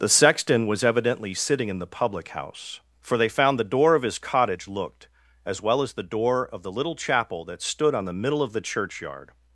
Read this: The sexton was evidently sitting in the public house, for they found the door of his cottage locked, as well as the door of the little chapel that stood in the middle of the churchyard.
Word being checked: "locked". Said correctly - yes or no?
no